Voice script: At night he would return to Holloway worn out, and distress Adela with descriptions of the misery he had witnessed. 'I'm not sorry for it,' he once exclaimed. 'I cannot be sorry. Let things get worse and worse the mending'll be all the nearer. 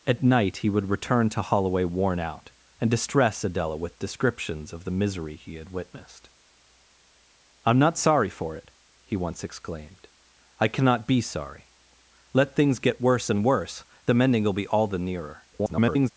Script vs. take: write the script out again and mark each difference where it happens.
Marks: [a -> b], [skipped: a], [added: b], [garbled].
At night he would return to Holloway worn out, and distress Adela with descriptions of the misery he had witnessed. 'I'm not sorry for it,' he once exclaimed. 'I cannot be sorry. Let things get worse and worse the mending'll be all the nearer. [garbled]